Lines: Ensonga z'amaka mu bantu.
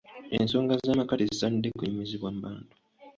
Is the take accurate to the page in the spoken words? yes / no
no